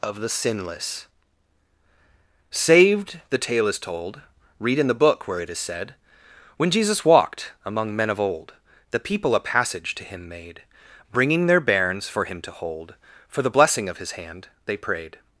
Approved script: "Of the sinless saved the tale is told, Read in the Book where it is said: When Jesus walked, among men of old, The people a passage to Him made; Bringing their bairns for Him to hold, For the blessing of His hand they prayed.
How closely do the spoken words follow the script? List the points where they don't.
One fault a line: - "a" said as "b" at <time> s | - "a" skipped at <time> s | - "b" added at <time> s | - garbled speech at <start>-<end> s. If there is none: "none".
none